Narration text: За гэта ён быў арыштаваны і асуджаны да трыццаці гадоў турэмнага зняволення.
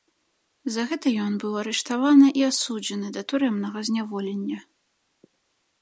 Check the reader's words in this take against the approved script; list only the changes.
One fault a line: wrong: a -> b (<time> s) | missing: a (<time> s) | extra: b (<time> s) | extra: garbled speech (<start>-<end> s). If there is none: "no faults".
missing: трыццаці гадоў (3.2 s)